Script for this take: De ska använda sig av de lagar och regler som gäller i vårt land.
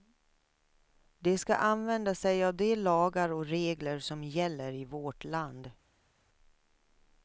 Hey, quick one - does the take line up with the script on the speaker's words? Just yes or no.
yes